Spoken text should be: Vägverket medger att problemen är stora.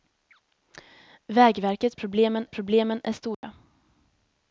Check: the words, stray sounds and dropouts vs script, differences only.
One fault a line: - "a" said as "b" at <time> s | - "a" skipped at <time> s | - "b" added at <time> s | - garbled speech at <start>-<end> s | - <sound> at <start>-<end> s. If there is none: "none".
- "medger" said as "problemen" at 2.0 s
- dropout at 3.3-3.4 s